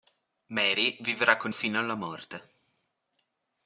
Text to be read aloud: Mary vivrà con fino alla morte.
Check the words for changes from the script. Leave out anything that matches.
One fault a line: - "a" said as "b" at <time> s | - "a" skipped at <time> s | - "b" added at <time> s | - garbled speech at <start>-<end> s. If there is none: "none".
none